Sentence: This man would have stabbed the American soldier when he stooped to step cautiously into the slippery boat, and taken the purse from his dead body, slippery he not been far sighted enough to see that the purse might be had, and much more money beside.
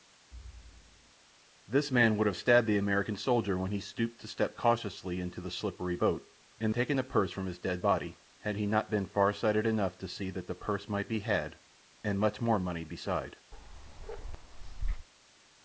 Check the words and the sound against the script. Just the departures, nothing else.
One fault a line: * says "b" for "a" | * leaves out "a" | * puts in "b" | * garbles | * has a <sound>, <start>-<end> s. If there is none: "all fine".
* has a thud, 0.3-1.1 s
* says "had" for "slippery"
* has a bark, 13.5-15.1 s